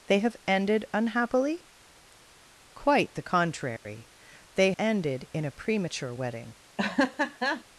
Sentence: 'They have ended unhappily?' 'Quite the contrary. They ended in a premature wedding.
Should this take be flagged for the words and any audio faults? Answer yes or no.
yes